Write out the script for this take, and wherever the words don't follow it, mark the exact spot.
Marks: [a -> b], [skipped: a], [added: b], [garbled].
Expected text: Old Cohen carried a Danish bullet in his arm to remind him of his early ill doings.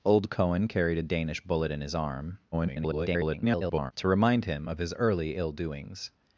Old Cohen carried a Danish bullet in his arm [garbled] to remind him of his early ill doings.